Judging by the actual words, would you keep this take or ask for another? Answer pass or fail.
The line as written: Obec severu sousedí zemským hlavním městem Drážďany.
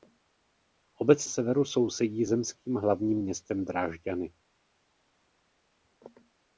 pass